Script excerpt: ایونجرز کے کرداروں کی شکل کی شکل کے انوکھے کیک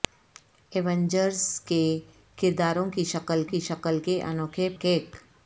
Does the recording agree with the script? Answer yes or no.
yes